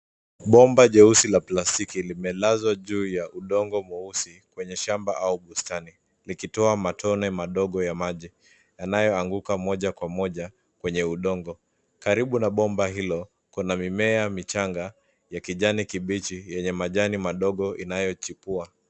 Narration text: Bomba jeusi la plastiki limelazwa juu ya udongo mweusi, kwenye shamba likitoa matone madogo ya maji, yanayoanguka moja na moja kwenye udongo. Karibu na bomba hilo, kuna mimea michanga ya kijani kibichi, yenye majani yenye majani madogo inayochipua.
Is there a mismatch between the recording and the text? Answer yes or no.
yes